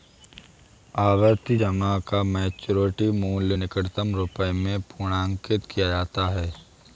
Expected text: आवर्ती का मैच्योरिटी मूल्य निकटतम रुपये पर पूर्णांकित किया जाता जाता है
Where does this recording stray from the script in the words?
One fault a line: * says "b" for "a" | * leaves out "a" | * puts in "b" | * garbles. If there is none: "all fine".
* puts in "जमा"
* says "में" for "पर"
* leaves out "जाता"